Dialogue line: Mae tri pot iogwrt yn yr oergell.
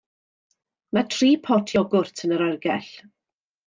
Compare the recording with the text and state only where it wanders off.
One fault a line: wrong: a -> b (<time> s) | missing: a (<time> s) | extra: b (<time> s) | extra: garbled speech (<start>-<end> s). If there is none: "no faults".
no faults